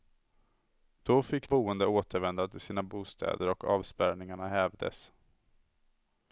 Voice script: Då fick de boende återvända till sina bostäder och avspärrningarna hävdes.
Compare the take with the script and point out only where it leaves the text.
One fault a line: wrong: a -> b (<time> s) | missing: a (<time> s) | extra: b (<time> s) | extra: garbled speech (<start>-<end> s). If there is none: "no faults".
missing: de (1.5 s)